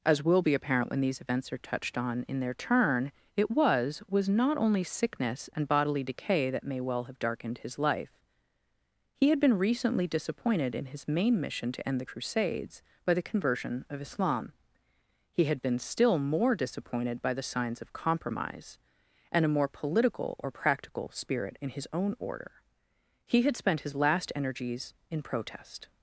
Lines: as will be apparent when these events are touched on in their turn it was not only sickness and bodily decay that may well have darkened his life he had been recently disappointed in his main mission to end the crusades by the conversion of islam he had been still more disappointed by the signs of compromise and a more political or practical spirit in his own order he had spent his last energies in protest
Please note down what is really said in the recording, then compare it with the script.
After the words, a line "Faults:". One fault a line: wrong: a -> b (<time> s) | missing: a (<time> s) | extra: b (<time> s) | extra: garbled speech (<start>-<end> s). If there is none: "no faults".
as will be apparent when these events are touched on in their turn it was was not only sickness and bodily decay that may well have darkened his life he had been recently disappointed in his main mission to end the crusades by the conversion of islam he had been still more disappointed by the signs of compromise and a more political or practical spirit in his own order he had spent his last energies in protest
Faults:
extra: was (4.1 s)